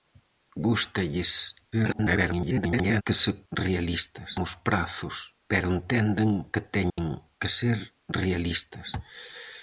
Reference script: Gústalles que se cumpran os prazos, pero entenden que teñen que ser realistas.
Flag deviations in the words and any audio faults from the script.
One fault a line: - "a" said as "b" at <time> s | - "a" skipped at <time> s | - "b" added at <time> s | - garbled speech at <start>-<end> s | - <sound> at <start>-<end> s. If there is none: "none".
- garbled speech at 1.7-3.0 s
- "cumpran" said as "realistas" at 3.5 s
- dropout at 6.9-7.0 s